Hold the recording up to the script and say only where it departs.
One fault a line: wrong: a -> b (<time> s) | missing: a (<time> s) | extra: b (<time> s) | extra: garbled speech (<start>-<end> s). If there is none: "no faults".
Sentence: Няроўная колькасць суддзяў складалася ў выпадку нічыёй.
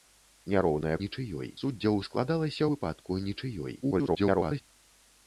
wrong: колькасць -> нічыёй (1.0 s)
missing: ў (2.6 s)
extra: garbled speech (3.8-4.6 s)